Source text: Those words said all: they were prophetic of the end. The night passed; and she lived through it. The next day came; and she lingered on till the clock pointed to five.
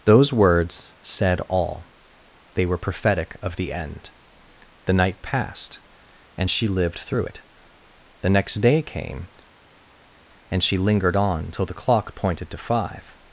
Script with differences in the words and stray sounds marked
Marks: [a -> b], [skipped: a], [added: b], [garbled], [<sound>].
Those words said all: they were prophetic of the end. The night passed; and she lived through it. The next day came; and she lingered on till the clock pointed to five.